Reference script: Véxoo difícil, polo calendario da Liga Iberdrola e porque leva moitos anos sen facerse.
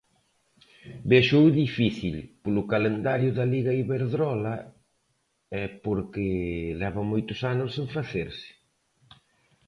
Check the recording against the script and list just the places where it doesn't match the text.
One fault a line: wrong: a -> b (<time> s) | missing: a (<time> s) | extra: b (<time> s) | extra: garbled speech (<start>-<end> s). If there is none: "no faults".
no faults